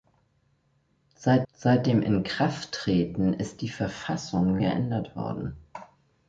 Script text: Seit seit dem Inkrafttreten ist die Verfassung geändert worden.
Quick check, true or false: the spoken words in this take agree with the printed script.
true